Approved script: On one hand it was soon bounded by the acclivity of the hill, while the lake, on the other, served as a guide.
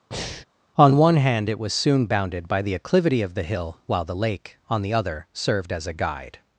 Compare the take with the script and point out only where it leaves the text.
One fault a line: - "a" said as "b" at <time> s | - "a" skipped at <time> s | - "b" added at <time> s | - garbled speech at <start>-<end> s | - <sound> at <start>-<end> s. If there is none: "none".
- breath at 0.1-0.5 s